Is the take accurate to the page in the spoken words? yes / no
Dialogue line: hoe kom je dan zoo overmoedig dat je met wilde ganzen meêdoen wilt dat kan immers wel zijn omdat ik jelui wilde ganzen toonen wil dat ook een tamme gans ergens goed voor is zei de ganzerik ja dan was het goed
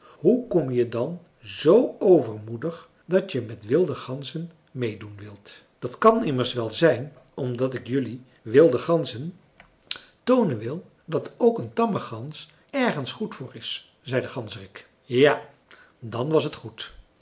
yes